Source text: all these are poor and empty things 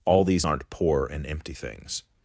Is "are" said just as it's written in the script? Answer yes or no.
no